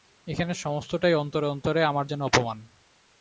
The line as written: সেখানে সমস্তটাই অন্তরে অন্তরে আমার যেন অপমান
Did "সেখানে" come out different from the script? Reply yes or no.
yes